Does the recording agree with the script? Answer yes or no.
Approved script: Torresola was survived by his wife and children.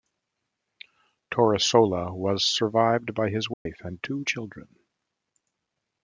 no